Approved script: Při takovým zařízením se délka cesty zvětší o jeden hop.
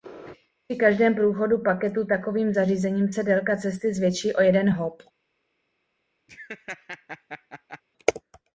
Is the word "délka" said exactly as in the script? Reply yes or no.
yes